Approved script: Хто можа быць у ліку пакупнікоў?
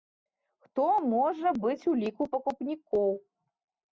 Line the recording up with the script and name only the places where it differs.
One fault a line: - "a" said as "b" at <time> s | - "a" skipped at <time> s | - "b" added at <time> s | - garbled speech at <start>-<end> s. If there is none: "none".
none